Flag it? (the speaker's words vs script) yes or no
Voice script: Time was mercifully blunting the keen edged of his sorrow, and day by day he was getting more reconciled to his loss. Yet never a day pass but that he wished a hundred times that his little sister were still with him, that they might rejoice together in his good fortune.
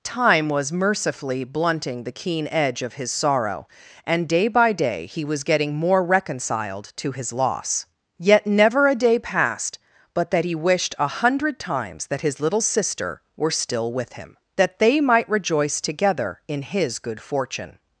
yes